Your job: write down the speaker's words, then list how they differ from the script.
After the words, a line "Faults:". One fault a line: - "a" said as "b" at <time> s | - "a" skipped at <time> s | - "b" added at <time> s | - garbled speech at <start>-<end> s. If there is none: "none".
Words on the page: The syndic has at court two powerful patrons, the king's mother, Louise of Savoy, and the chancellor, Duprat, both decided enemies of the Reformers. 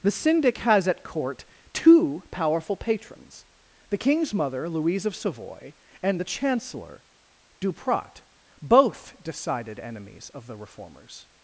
The syndic has at court two powerful patrons, the king's mother, Louise of Savoy, and the chancellor, Duprat, both decided enemies of the Reformers.
Faults:
none